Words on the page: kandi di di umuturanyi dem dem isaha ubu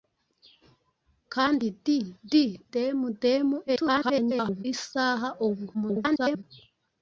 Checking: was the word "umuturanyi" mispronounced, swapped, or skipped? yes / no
yes